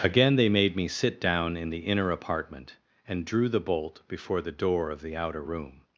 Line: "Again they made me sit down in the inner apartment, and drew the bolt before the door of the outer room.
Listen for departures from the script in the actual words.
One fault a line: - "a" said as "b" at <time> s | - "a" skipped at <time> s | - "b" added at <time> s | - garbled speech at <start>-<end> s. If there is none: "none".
none